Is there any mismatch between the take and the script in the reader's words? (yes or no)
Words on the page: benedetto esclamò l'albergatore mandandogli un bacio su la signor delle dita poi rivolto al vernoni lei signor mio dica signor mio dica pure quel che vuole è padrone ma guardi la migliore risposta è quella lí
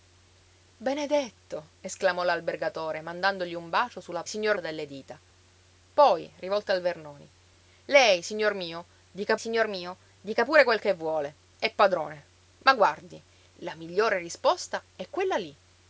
no